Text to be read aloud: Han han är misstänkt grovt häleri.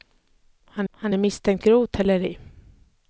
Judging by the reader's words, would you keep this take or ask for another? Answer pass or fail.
pass